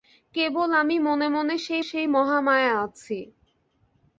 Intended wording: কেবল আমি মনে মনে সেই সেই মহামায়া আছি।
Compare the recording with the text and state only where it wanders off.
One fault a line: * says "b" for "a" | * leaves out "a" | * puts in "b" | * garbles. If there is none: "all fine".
all fine